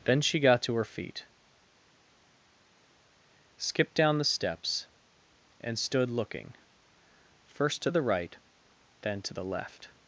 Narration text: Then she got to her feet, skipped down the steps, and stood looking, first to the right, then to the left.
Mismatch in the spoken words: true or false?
false